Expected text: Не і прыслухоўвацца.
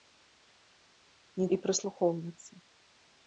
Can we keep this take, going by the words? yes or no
yes